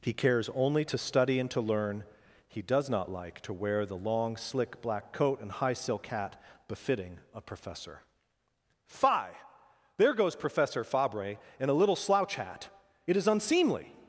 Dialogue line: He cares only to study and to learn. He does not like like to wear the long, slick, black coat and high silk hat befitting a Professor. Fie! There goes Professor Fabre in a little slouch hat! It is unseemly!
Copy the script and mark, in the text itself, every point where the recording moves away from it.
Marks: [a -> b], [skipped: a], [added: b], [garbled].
He cares only to study and to learn. He does not like [skipped: like] to wear the long, slick, black coat and high silk hat befitting a Professor. Fie! There goes Professor Fabre in a little slouch hat! It is unseemly!